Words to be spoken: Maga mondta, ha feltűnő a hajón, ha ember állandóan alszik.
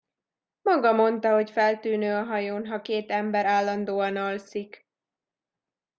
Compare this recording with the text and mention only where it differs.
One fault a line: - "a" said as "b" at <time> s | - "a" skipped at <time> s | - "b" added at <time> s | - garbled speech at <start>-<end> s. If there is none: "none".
- "ha" said as "hogy" at 1.3 s
- "két" added at 2.8 s